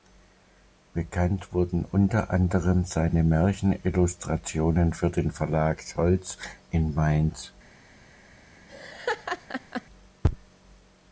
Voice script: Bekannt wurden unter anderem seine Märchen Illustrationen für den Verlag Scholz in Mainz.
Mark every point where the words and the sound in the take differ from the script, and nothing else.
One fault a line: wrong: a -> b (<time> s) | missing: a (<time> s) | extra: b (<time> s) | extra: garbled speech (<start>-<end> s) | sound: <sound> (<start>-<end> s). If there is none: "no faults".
sound: laugh (8.7-9.8 s)